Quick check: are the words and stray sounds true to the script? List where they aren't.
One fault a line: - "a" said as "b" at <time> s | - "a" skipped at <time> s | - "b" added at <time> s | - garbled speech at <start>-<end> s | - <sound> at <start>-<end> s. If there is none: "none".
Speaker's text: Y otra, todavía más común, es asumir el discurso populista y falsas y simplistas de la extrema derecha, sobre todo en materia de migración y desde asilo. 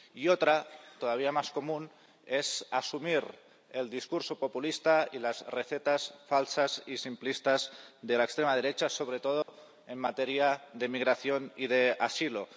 - "las recetas" added at 5.2 s
- dropout at 9.4-9.5 s
- "desde" said as "de" at 11.7 s